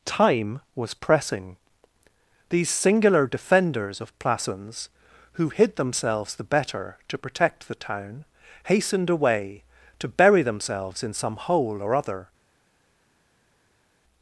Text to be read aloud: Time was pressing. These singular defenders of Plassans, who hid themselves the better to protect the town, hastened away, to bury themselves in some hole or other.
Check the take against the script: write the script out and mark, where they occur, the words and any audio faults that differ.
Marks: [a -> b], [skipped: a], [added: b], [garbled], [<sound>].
Time was pressing. These singular defenders of Plassans, who hid themselves the better to protect the town, hastened away, to bury themselves in some hole or other.